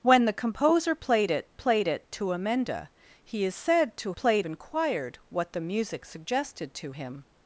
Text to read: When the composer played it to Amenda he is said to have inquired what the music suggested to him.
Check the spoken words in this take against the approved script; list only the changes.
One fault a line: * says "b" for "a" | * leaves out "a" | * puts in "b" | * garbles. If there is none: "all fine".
* puts in "played it"
* says "played" for "have"